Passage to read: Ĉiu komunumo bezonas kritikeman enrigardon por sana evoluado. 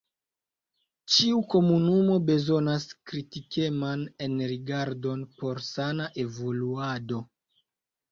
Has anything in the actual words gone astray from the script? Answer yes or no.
no